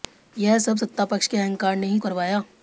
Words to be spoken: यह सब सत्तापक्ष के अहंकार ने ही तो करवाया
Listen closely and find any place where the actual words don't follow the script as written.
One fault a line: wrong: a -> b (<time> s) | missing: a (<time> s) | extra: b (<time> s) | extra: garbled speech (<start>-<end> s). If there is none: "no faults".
missing: तो (2.0 s)